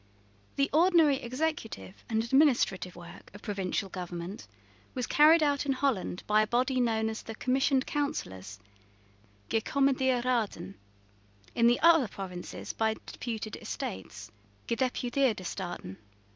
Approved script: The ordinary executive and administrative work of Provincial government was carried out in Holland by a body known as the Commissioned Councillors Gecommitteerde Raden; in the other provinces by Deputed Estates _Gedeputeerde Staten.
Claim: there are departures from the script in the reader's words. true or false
false